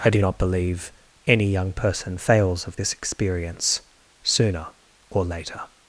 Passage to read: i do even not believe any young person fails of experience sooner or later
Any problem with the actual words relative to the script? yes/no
yes